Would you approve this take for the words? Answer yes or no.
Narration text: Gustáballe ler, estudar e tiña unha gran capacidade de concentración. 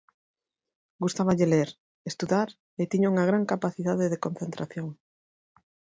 yes